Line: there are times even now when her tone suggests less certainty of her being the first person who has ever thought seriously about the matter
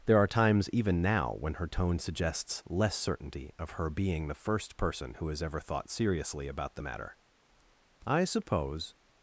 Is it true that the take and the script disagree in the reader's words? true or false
true